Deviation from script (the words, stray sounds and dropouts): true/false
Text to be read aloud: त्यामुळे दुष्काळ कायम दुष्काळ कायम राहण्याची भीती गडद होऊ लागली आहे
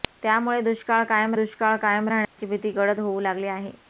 true